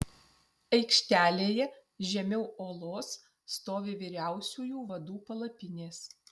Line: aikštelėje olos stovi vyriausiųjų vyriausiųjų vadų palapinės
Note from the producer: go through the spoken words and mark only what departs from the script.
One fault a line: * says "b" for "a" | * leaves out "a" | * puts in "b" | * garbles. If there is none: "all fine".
* puts in "žemiau"
* leaves out "vyriausiųjų"